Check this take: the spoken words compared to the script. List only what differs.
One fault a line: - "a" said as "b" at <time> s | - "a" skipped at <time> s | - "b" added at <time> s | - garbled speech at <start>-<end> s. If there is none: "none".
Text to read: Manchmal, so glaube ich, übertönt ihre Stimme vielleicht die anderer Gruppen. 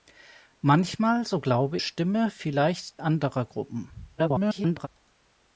- "ich übertönt ihre" skipped at 1.8 s
- "die" skipped at 3.0 s
- garbled speech at 4.2-4.9 s